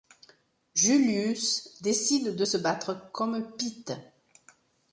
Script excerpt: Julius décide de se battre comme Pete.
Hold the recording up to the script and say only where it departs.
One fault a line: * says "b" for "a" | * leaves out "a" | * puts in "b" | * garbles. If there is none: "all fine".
all fine